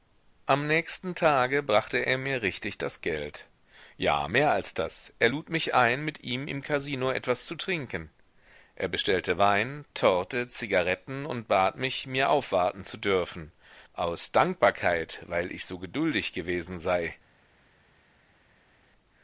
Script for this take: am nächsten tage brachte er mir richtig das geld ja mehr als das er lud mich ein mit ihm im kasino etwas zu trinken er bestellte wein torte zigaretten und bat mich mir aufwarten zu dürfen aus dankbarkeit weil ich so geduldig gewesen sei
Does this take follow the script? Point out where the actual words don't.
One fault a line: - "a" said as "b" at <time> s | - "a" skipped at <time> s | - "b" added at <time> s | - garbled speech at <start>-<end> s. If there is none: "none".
none